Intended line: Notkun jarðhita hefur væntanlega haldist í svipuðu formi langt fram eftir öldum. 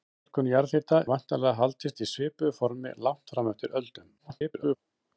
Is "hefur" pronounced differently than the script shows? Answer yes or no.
yes